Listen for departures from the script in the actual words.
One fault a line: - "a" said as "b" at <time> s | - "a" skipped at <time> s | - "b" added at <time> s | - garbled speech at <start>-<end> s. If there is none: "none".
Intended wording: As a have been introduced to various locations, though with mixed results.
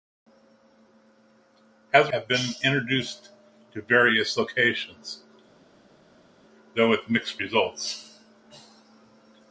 none